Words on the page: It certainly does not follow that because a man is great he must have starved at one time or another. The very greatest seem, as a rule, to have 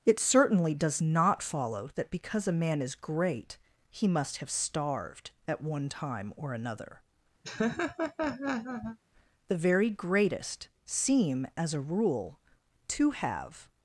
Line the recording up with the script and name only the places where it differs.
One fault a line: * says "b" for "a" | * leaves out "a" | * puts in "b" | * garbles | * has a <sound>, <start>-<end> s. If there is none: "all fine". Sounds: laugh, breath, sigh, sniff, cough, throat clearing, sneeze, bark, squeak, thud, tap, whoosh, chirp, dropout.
* has a laugh, 7.4-9.0 s